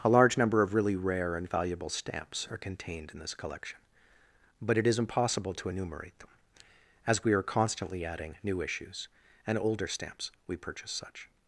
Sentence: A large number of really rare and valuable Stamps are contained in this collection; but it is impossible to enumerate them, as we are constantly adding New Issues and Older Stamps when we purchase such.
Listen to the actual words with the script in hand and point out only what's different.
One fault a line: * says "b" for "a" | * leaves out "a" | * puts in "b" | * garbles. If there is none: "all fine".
* leaves out "when"